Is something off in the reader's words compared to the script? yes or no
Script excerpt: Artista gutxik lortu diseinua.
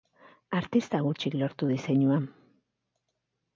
no